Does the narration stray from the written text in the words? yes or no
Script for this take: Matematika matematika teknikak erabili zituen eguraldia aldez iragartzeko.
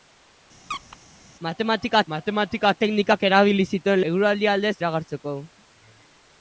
no